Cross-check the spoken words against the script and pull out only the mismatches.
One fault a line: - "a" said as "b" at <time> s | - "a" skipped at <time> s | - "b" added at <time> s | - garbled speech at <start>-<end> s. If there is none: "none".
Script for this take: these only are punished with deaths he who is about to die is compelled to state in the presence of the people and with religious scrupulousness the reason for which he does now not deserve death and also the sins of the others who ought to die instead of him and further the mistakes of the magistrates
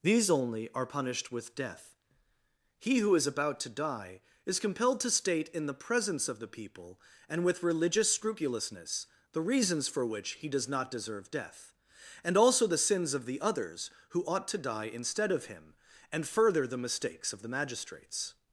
- "deaths" said as "death" at 1.6 s
- "reason" said as "reasons" at 9.4 s
- "now" skipped at 10.7 s